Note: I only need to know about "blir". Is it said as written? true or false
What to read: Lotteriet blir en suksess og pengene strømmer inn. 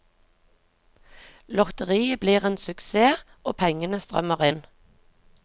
true